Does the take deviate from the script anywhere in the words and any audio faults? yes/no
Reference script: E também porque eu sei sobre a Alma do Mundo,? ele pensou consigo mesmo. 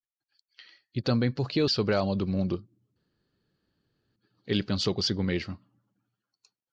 yes